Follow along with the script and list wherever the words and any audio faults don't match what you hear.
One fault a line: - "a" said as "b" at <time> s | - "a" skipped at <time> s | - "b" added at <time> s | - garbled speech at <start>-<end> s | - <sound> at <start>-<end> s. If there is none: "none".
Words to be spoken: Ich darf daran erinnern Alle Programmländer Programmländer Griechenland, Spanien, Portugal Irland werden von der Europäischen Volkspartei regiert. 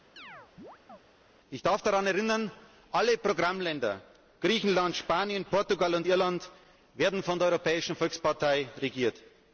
- chirp at 0.2-1.0 s
- "Programmländer" skipped at 4.0 s
- "und" added at 5.9 s